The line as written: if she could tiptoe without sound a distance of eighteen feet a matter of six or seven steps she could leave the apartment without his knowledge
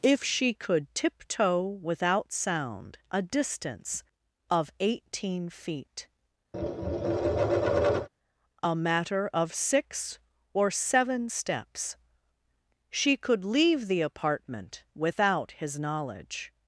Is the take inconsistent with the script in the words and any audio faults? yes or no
yes